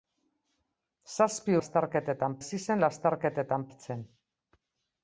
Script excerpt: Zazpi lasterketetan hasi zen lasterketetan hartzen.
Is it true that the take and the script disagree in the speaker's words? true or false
false